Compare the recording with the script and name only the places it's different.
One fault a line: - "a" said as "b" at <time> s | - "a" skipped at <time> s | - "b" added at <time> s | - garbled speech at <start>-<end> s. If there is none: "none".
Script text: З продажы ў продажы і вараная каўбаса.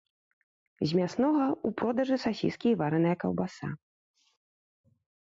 - "продажы" said as "мяснога" at 1.0 s
- "сасіскі" added at 2.2 s